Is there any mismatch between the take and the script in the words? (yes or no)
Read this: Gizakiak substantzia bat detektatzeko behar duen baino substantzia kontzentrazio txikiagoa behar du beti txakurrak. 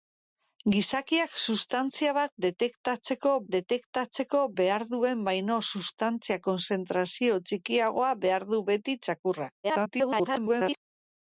yes